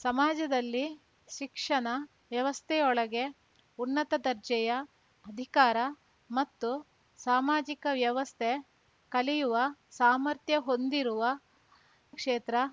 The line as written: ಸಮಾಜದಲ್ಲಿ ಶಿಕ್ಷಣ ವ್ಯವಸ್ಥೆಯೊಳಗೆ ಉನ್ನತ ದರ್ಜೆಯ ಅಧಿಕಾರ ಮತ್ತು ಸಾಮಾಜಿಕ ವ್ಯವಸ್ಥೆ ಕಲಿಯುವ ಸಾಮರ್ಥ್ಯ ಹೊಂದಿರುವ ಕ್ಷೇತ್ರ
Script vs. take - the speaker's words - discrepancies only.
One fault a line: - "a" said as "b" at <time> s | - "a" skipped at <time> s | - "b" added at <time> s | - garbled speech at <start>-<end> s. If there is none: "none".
none